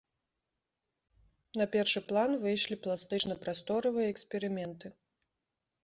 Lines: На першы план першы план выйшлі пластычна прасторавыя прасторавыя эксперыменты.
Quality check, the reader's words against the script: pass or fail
fail